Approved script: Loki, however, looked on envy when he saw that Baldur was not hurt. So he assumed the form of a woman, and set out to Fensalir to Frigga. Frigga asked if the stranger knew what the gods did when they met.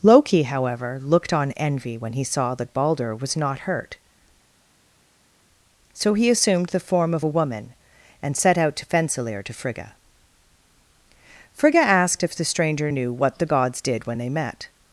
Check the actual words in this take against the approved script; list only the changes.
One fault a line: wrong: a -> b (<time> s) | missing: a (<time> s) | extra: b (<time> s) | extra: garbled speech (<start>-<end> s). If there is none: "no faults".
no faults